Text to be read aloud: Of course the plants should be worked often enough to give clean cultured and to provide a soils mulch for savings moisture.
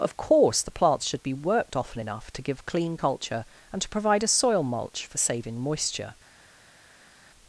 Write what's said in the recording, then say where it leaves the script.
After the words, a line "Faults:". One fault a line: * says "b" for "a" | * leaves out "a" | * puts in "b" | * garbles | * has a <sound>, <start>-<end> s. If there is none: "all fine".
Of course the plants should be worked often enough to give clean culture and to provide a soil mulch for saving moisture.
Faults:
* says "culture" for "cultured"
* says "soil" for "soils"
* says "saving" for "savings"